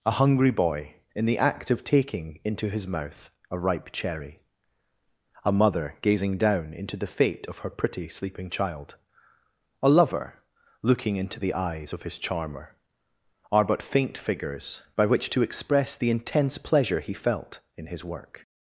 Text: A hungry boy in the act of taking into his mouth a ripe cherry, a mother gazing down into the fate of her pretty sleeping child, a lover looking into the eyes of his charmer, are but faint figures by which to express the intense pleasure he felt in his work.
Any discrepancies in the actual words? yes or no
no